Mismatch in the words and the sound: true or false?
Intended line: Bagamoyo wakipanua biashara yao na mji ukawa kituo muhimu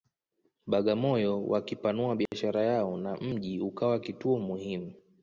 true